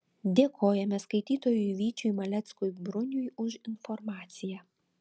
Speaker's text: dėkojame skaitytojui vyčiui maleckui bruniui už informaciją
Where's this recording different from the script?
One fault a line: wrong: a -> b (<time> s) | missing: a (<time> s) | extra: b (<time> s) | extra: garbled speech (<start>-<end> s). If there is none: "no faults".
no faults